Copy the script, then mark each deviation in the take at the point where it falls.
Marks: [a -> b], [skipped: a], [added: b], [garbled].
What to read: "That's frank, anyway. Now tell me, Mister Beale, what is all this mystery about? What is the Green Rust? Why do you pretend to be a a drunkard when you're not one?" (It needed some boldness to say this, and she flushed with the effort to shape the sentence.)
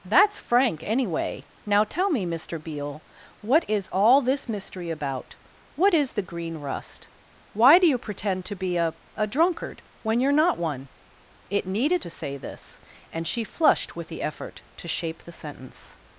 "That's frank, anyway. Now tell me, Mister Beale, what is all this mystery about? What is the Green Rust? Why do you pretend to be a a drunkard when you're not one?" (It needed [skipped: some boldness] to say this, and she flushed with the effort to shape the sentence.)